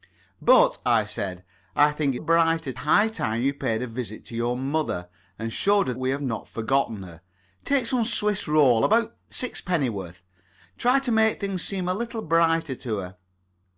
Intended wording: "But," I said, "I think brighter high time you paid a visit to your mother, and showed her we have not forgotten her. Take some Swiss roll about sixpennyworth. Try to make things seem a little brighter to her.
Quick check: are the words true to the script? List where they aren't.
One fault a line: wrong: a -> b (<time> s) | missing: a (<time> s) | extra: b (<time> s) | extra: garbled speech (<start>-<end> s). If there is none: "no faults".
no faults